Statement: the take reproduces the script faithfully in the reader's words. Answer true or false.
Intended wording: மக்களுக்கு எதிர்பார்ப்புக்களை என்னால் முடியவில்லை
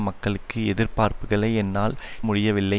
true